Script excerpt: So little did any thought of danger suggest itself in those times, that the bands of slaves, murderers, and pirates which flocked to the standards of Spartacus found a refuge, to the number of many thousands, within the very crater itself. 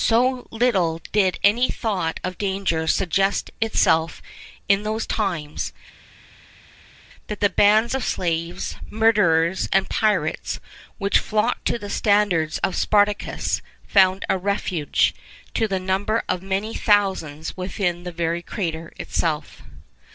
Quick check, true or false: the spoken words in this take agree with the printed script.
true